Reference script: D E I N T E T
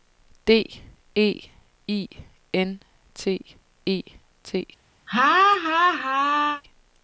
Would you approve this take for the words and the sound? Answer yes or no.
no